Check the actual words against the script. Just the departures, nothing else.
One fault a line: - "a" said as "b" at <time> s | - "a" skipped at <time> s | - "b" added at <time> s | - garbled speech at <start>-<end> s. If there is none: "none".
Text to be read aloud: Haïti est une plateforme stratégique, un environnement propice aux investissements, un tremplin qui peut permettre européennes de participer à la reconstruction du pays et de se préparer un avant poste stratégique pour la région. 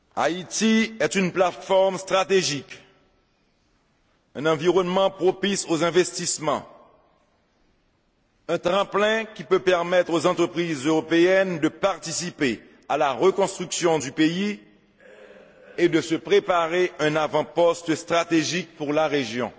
- "aux entreprises" added at 10.1 s